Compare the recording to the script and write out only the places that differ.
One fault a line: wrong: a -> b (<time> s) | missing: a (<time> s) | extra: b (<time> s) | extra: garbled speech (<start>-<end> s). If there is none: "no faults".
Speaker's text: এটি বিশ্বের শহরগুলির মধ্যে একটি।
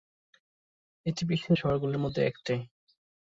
no faults